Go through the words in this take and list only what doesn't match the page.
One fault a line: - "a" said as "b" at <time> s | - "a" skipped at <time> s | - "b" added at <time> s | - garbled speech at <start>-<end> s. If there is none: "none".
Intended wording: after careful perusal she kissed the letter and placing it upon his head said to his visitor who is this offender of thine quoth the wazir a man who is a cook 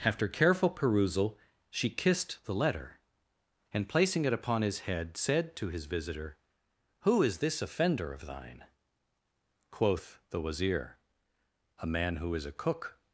none